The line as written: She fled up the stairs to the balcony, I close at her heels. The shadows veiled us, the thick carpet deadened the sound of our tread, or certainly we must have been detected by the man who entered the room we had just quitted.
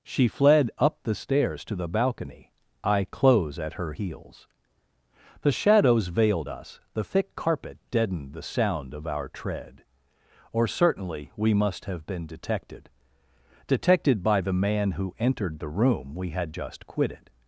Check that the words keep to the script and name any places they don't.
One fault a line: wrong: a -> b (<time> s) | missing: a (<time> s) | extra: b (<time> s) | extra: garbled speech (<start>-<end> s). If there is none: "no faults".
extra: detected (13.7 s)